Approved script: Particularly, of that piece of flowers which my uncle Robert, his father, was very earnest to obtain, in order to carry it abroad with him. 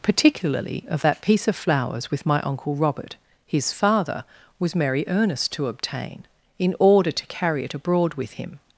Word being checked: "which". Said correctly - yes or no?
no